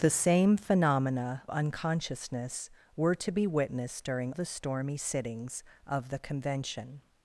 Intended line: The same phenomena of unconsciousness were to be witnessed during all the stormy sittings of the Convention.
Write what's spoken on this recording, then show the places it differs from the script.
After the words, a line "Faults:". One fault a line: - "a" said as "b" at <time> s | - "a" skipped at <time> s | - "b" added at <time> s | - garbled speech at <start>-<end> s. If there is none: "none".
The same phenomena unconsciousness were to be witnessed during the stormy sittings of the Convention.
Faults:
- "of" skipped at 1.4 s
- "all" skipped at 4.3 s